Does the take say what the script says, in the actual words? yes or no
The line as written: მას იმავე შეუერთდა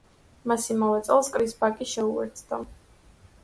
no